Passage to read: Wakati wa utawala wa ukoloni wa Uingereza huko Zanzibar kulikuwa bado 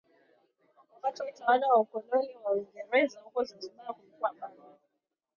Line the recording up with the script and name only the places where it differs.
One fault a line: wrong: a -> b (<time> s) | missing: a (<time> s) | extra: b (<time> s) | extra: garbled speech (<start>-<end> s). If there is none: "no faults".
no faults